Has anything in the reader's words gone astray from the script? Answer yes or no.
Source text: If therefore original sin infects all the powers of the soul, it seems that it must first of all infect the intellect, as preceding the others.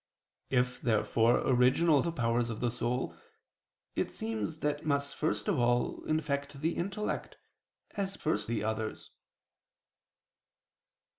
yes